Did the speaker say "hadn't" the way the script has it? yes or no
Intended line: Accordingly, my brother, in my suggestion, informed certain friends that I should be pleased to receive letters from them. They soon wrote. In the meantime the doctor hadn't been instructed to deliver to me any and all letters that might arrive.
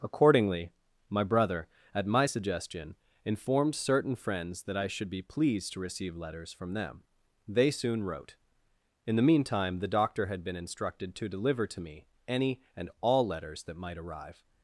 no